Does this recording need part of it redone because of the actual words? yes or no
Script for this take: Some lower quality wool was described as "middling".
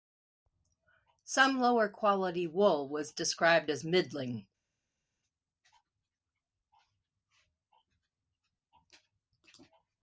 no